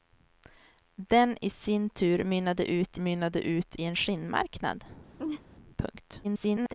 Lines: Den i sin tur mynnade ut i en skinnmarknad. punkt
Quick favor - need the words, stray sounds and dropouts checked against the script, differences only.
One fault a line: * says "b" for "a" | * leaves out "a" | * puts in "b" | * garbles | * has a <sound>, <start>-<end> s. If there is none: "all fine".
* puts in "mynnade ut"
* has a laugh, 5.2-5.4 s
* garbles